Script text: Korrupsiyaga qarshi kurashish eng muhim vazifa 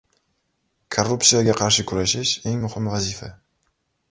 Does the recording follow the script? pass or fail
pass